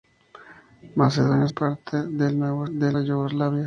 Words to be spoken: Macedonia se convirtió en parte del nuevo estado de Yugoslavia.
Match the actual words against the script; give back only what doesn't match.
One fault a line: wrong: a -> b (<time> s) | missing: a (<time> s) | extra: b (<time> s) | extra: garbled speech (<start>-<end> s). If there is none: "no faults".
missing: se convirtió (1.5 s)
wrong: estado -> del (2.7 s)